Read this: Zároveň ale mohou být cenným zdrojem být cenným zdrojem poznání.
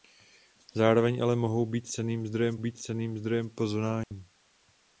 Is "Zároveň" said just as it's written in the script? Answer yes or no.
yes